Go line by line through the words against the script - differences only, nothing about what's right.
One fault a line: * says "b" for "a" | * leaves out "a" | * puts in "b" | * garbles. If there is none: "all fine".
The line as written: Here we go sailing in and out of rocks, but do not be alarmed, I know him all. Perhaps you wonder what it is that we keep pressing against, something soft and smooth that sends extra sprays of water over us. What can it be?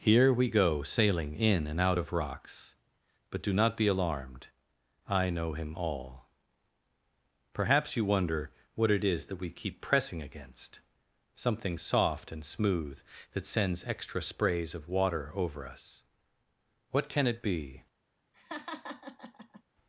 all fine